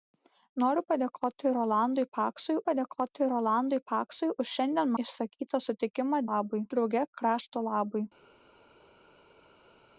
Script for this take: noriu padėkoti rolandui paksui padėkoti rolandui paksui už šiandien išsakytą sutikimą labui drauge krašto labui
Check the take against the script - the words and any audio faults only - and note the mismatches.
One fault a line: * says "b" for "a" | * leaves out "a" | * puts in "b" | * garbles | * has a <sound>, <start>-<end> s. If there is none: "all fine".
all fine